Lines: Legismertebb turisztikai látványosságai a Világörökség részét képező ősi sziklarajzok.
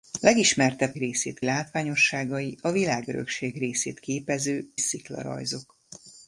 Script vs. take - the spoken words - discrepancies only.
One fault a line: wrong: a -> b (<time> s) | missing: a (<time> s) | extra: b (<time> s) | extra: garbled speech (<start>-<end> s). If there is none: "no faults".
wrong: turisztikai -> részét (1.0 s)
missing: ősi (4.7 s)